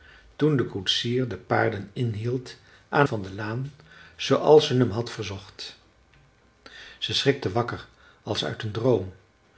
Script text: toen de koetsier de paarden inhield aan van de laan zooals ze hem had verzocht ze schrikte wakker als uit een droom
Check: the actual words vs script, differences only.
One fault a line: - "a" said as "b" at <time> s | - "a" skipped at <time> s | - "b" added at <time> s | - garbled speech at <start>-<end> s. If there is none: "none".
none